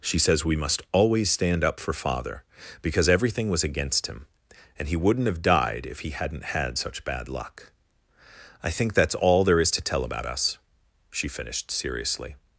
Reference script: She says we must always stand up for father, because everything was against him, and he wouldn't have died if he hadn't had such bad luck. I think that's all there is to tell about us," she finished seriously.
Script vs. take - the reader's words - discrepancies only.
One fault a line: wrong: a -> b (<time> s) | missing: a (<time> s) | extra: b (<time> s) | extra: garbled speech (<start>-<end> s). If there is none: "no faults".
no faults